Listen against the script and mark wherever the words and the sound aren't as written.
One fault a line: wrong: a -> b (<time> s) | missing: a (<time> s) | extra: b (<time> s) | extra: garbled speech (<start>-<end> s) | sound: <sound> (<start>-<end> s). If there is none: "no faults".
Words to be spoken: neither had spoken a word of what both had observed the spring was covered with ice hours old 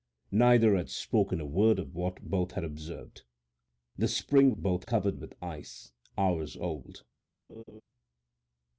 wrong: was -> both (4.6 s)
sound: laugh (7.5-7.8 s)